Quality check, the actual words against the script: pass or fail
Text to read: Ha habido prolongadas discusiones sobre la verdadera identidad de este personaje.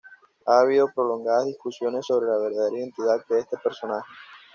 pass